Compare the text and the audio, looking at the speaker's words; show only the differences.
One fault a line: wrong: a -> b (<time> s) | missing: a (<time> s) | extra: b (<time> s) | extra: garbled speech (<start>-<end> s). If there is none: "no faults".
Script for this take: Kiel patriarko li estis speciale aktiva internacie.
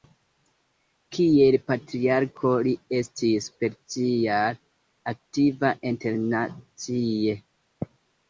no faults